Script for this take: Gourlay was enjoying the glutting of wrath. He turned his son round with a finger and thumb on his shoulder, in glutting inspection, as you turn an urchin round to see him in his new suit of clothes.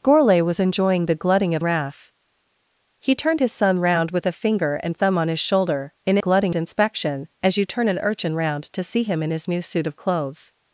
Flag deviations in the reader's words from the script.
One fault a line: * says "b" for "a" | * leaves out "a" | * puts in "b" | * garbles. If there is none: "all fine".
all fine